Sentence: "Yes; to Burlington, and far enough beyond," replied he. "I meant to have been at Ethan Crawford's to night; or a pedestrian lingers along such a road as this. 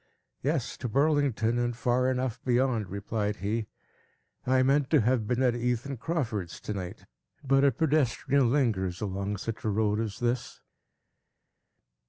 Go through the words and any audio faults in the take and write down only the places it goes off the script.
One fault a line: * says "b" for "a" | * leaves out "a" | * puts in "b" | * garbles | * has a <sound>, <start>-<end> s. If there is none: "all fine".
* says "but" for "or"